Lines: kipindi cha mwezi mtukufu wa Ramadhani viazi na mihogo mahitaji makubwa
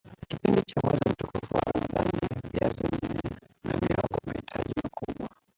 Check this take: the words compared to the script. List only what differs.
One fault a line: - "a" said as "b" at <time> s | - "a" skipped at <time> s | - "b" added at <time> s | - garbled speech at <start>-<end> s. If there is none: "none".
none